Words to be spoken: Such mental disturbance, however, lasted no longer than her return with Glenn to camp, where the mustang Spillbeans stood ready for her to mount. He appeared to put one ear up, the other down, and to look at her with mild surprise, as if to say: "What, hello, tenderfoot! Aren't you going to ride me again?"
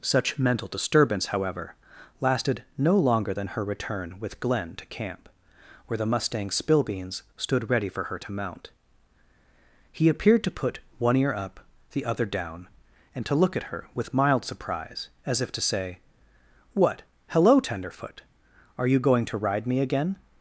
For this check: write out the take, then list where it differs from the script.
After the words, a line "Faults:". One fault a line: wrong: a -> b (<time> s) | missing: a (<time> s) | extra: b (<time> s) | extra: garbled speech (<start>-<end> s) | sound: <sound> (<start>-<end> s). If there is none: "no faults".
Such mental disturbance, however, lasted no longer than her return with Glenn to camp, where the mustang Spillbeans stood ready for her to mount. He appeared to put one ear up, the other down, and to look at her with mild surprise, as if to say: "What, hello, tenderfoot! Are you going to ride me again?"
Faults:
wrong: Aren't -> Are (18.8 s)